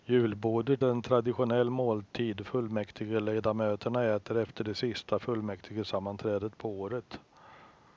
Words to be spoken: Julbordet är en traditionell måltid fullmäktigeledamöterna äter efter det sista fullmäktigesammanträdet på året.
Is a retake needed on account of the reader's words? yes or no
no